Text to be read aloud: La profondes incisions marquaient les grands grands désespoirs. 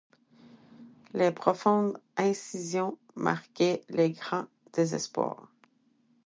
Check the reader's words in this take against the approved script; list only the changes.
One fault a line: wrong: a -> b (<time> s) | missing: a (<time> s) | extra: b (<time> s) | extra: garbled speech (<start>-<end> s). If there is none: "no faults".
wrong: La -> Les (1.1 s)
missing: grands (4.5 s)